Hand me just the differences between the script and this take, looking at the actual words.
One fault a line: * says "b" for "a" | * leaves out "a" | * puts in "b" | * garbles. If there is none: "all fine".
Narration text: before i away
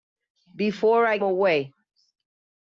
all fine